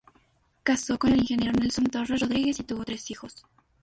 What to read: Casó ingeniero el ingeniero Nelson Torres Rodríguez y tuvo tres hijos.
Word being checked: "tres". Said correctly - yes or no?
yes